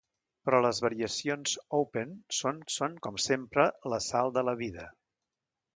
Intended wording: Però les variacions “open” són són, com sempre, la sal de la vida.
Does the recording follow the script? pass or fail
pass